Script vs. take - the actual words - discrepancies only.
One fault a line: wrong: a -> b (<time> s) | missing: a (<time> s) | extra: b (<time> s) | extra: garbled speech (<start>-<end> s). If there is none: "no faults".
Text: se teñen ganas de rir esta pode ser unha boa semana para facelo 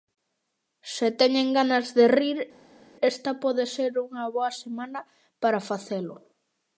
no faults